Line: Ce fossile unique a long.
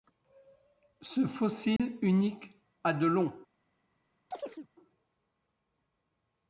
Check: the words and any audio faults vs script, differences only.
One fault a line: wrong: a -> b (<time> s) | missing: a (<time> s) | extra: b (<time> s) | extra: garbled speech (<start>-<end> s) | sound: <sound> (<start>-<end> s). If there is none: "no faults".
sound: dropout (1.8-1.8 s)
extra: de (2.9 s)
sound: chirp (4.3-4.7 s)